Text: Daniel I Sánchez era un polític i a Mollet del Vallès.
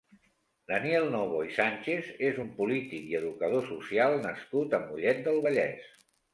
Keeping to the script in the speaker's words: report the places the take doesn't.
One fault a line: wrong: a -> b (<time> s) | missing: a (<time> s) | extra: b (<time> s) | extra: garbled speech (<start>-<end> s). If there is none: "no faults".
extra: Novo (1.1 s)
wrong: era -> és (2.3 s)
extra: educador social nascut (3.2 s)